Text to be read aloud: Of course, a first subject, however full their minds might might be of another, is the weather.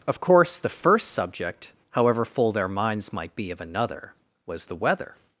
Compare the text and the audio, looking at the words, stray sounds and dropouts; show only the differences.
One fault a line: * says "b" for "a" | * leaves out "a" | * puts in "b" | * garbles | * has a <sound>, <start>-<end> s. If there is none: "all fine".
* says "the" for "a"
* leaves out "might"
* says "was" for "is"